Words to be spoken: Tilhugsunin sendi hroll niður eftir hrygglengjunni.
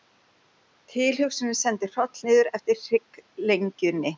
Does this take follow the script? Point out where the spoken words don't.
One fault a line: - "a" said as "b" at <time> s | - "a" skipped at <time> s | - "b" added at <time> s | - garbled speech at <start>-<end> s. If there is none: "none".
none